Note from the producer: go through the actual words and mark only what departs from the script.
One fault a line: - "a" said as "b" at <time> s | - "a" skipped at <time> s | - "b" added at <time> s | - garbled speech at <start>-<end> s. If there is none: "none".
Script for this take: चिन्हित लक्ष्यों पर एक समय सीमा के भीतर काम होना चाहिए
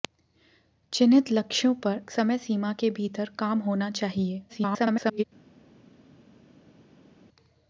- "एक" skipped at 2.0 s
- garbled speech at 4.5-5.2 s